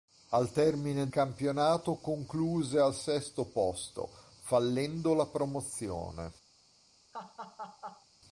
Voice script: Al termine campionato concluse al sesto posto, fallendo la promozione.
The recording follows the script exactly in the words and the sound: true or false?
false